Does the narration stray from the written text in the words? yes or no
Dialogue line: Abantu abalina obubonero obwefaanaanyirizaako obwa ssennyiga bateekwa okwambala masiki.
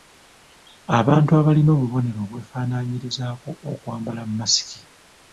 yes